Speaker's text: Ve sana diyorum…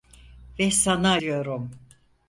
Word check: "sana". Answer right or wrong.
right